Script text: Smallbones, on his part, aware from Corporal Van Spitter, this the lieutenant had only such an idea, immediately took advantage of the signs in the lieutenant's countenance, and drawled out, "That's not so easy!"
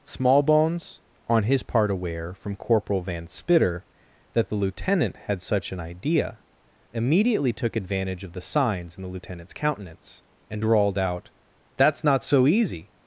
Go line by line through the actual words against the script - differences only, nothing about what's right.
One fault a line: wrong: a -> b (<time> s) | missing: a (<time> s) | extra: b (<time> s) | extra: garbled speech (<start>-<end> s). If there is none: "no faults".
wrong: this -> that (4.3 s)
missing: only (5.4 s)